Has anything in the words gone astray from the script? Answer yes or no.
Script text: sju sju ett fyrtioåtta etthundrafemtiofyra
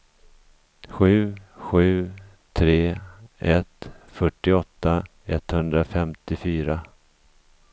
yes